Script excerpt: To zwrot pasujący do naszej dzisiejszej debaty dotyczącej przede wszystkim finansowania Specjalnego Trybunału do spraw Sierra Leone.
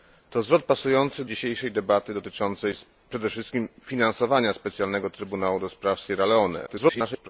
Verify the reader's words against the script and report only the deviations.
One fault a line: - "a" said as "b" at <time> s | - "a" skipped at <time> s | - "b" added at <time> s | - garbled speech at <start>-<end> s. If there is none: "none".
- "do naszej" skipped at 1.2 s
- garbled speech at 6.7-7.3 s